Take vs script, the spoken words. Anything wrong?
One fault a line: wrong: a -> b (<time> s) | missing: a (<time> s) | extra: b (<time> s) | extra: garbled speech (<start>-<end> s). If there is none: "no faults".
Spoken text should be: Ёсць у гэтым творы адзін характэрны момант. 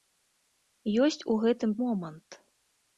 missing: творы адзін характэрны (1.8 s)